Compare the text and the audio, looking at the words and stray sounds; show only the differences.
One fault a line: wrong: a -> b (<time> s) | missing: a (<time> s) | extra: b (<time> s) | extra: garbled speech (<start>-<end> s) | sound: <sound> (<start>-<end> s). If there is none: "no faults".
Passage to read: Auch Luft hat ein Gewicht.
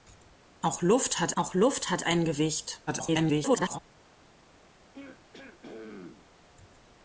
extra: auch Luft hat (1.4 s)
extra: garbled speech (2.9-3.8 s)
sound: throat clearing (4.9-6.3 s)